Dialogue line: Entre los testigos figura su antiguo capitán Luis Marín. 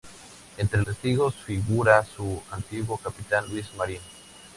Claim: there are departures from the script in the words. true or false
true